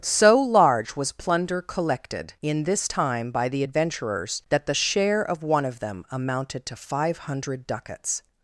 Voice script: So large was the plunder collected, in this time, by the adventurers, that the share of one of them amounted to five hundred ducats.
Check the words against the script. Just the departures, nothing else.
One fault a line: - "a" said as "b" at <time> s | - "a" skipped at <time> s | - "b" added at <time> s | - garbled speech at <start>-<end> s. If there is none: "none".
- "the" skipped at 1.1 s